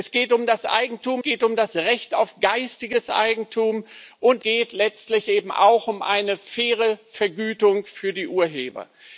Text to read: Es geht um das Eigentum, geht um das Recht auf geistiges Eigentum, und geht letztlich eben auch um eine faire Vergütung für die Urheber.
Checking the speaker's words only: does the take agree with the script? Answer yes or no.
yes